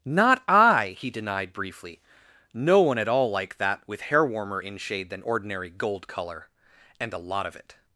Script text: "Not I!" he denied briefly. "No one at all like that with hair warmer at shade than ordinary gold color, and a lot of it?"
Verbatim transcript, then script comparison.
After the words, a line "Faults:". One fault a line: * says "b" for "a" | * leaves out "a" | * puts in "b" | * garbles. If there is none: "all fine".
"Not I!" he denied briefly. "No one at all like that with hair warmer in shade than ordinary gold color, and a lot of it?"
Faults:
* says "in" for "at"